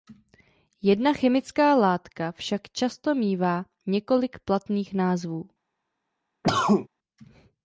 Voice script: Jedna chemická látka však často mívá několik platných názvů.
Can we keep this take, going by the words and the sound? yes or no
no